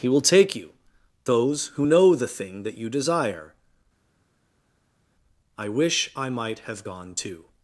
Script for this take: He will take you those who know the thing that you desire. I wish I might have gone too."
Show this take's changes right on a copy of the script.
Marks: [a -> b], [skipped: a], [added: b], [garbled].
He will take you those who know the thing that you desire. I wish I might have gone too."